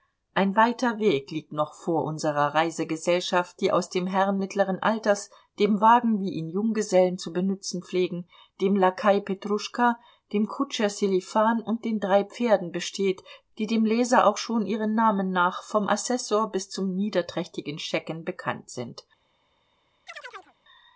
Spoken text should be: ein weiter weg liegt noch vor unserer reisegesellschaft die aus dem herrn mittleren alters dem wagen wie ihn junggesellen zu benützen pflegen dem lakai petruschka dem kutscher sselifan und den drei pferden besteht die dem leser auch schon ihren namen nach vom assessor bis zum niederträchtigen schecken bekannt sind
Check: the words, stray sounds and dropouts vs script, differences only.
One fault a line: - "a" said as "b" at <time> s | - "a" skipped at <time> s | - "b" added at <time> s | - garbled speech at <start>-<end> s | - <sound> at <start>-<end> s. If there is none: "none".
- chirp at 20.1-20.5 s